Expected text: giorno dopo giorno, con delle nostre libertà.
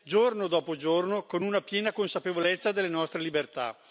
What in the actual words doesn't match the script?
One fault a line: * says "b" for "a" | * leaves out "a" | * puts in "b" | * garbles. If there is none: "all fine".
* puts in "una piena consapevolezza"